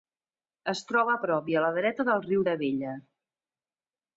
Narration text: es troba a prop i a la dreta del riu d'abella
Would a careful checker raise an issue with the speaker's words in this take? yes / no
no